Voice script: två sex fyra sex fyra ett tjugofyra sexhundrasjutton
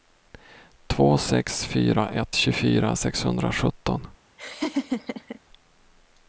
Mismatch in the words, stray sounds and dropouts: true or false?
true